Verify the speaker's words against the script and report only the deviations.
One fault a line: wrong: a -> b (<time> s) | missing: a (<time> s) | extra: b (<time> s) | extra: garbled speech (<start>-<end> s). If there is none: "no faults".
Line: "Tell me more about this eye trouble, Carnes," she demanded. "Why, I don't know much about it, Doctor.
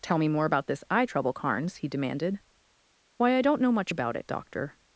wrong: she -> he (1.8 s)